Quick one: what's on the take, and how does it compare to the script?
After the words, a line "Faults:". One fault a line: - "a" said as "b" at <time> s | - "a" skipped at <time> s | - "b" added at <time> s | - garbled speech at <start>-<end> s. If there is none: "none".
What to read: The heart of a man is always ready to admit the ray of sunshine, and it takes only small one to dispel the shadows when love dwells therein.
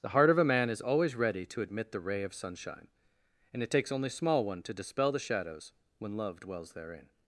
The heart of a man is always ready to admit the ray of sunshine, and it takes only small one to dispel the shadows when love dwells therein.
Faults:
none